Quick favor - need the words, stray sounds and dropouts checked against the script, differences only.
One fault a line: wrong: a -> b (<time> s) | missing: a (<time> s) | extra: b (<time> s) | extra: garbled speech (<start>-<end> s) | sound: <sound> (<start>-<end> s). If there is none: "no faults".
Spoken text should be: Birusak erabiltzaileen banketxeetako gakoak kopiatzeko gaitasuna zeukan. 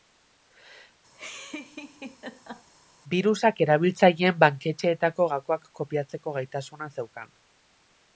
sound: laugh (1.1-2.7 s)